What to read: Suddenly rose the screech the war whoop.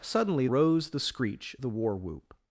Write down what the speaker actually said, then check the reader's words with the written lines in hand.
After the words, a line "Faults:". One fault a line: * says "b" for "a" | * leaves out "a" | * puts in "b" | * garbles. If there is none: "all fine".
Suddenly rose the screech the war whoop.
Faults:
all fine